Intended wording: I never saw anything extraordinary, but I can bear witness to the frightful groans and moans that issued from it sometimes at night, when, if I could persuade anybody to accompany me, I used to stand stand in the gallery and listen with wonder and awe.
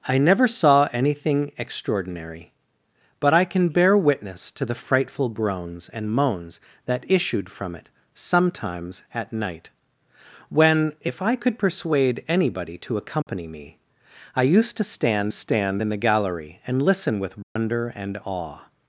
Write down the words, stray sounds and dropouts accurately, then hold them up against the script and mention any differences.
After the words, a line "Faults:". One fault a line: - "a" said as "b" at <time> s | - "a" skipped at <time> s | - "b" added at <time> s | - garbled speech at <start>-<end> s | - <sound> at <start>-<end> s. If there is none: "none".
I never saw anything extraordinary, but I can bear witness to the frightful groans and moans that issued from it sometimes at night, when, if I could persuade anybody to accompany me, I used to stand stand in the gallery and listen with wonder and awe.
Faults:
- dropout at 13.2-13.3 s
- dropout at 17.4-17.6 s